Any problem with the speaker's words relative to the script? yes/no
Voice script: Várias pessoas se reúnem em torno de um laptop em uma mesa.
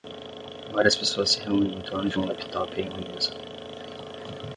no